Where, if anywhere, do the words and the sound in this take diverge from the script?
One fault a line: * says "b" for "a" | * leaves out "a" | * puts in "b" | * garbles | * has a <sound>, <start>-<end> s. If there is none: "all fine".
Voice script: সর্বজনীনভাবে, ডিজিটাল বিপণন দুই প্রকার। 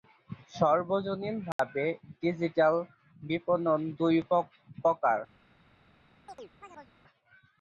* has a dropout, 1.5-1.6 s
* has a chirp, 6.3-6.9 s